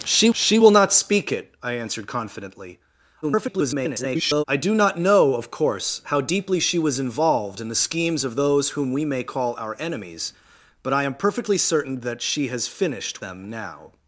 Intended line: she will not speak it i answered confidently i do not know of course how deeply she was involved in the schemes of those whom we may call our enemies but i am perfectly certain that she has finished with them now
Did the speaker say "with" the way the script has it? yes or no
no